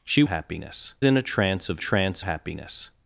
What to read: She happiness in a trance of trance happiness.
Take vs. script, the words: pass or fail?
pass